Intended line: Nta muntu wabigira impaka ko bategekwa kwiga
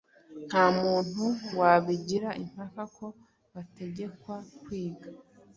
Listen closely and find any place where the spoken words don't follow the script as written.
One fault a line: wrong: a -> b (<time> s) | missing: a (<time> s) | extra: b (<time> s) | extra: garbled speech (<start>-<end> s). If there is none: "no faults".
no faults